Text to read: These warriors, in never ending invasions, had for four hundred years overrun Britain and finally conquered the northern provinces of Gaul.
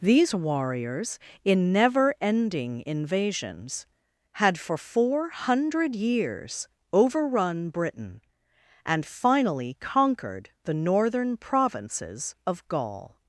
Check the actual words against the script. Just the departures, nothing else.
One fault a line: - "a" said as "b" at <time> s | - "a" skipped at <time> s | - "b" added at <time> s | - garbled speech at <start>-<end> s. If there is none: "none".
none